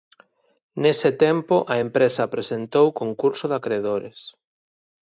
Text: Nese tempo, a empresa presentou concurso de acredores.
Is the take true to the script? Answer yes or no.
yes